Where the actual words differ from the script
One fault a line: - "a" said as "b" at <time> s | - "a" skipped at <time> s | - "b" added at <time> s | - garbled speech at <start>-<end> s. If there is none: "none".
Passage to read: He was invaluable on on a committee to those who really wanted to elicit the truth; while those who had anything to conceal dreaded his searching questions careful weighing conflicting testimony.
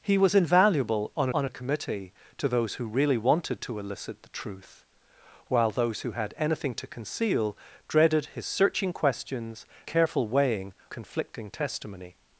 none